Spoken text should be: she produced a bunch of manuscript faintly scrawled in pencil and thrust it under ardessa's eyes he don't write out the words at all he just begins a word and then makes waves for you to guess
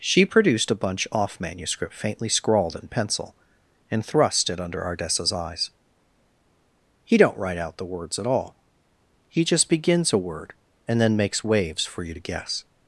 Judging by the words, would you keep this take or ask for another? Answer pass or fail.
fail